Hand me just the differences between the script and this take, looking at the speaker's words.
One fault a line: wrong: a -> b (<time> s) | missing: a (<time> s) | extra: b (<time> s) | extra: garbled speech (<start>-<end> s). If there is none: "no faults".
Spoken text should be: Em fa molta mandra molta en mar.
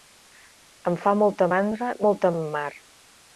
no faults